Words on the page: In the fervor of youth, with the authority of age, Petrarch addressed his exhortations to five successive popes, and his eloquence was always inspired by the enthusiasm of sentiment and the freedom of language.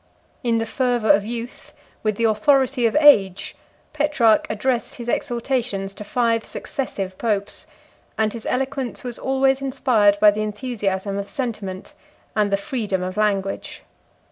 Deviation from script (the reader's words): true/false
false